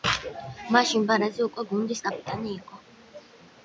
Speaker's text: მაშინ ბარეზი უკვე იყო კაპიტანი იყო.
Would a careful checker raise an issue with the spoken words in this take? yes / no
yes